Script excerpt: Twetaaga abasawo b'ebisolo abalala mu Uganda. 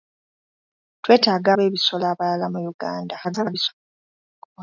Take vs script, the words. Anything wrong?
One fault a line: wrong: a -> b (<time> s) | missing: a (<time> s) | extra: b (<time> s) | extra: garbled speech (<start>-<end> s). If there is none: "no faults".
missing: abasawo (1.5 s)
extra: garbled speech (3.2-3.7 s)